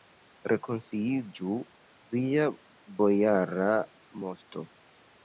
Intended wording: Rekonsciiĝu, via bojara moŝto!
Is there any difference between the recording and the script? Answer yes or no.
no